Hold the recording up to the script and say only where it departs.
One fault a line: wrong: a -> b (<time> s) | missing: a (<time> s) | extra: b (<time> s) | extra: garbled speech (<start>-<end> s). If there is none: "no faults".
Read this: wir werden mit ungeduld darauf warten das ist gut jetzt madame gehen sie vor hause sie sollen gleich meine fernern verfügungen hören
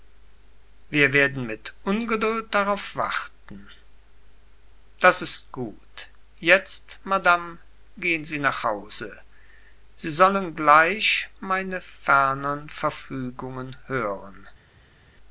wrong: vor -> nach (8.4 s)